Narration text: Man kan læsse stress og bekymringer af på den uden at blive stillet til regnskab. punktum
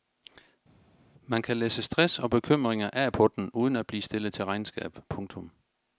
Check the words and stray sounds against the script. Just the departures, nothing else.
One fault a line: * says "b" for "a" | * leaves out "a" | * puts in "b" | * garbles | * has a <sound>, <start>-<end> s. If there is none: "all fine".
all fine